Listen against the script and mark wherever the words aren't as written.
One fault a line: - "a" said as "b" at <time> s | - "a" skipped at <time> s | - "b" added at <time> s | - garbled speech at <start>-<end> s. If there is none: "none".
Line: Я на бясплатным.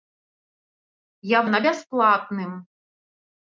none